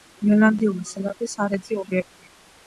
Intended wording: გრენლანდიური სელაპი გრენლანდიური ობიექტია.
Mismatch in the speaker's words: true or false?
true